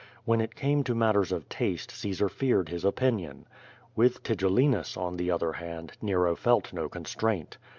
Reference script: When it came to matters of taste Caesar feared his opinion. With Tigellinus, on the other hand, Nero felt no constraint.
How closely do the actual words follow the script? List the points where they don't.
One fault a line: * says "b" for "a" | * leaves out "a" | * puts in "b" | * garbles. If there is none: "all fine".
all fine